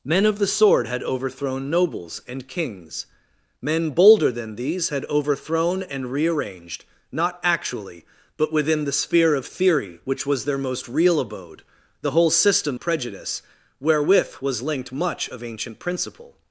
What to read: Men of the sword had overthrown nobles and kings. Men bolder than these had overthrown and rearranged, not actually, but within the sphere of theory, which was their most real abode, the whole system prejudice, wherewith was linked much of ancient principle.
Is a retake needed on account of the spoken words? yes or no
no